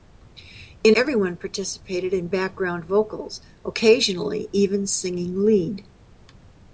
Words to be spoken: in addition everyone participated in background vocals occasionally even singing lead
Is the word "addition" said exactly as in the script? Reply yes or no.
no